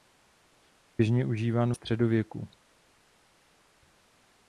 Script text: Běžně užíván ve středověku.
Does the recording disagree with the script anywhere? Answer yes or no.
yes